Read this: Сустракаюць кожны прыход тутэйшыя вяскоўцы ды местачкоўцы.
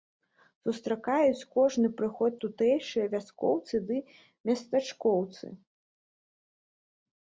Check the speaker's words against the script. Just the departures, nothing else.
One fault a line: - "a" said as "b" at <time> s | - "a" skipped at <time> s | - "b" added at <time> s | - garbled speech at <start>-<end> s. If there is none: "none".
none